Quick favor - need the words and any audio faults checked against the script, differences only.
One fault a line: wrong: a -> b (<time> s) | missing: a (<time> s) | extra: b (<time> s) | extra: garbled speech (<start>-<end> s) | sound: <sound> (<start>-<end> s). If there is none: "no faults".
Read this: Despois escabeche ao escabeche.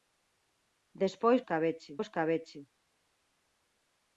no faults